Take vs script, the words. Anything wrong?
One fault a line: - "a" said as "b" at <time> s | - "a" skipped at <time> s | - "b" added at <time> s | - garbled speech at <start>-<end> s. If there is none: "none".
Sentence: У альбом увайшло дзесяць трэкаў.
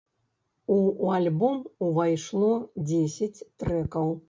none